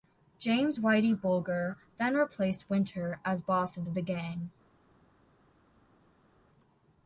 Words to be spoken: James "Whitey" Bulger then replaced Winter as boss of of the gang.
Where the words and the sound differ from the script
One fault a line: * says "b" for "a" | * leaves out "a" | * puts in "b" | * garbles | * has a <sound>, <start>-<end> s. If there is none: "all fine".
all fine